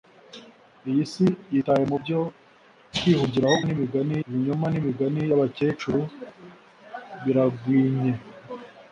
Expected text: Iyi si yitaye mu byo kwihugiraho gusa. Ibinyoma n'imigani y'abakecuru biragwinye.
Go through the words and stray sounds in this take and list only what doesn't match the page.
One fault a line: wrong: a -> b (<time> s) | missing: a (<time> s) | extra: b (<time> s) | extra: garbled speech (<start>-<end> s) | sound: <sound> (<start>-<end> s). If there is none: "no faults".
wrong: gusa -> n'imigani (3.6 s)